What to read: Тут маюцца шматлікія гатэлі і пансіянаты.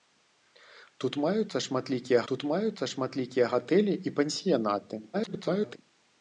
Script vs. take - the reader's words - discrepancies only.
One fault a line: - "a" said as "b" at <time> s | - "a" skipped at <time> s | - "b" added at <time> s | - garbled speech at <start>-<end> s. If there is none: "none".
- "тут маюцца шматлікія" added at 2.3 s
- garbled speech at 5.1-5.8 s